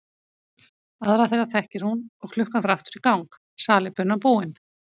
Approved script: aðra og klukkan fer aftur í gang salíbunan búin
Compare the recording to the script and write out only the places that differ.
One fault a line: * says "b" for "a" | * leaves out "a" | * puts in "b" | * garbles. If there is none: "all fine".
* puts in "þeirra þekkir hún"